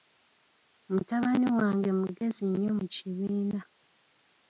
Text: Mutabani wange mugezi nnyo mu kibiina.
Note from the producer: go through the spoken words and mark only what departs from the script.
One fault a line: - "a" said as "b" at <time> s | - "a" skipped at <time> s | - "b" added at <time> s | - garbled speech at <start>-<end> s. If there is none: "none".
none